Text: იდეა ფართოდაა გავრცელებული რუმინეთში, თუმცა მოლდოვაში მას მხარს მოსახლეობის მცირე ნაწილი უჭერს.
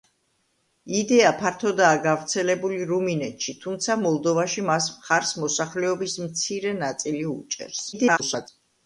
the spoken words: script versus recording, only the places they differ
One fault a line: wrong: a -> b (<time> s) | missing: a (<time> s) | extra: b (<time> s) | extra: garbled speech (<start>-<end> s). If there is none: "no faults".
extra: garbled speech (7.9-8.5 s)